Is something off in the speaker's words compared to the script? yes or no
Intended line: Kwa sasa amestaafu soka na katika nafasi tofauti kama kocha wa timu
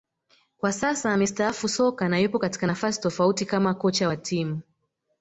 yes